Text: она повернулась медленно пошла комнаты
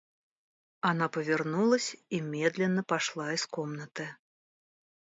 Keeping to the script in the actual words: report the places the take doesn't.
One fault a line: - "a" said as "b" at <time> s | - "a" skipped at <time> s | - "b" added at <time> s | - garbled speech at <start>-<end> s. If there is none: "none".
- "и" added at 2.1 s
- "из" added at 3.3 s